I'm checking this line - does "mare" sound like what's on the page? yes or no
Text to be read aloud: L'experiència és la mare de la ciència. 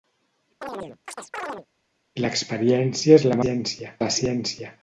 no